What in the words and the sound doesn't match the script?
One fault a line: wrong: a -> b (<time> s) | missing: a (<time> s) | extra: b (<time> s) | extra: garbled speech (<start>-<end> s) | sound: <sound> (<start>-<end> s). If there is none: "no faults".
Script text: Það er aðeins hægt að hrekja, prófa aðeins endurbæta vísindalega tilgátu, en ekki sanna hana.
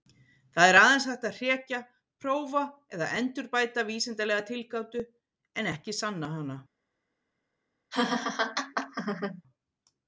wrong: aðeins -> eða (3.0 s)
sound: laugh (7.9-9.4 s)